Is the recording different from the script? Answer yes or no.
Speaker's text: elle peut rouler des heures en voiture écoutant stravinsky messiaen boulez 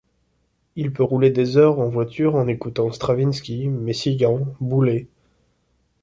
yes